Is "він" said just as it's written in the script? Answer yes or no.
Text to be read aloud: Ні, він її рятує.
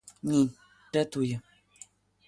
no